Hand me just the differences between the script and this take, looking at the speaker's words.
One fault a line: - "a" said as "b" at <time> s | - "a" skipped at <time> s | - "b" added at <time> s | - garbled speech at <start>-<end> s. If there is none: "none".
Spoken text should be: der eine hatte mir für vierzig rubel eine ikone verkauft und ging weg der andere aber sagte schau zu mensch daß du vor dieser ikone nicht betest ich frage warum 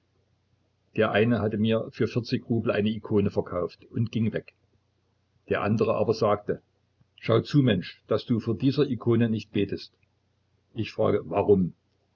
none